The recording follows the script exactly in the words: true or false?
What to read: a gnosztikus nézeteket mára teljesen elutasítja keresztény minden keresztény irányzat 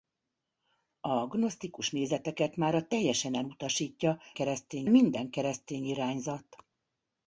true